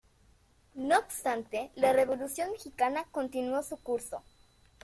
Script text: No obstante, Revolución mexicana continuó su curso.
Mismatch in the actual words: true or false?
true